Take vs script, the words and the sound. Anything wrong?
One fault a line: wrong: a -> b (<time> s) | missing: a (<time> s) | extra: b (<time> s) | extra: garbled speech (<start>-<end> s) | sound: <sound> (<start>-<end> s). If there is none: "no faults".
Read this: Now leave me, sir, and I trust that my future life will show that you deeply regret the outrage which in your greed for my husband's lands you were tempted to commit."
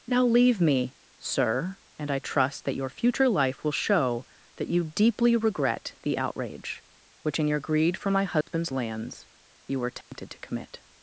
wrong: my -> your (2.8 s)
sound: dropout (8.4-8.5 s)
sound: dropout (10.0-10.1 s)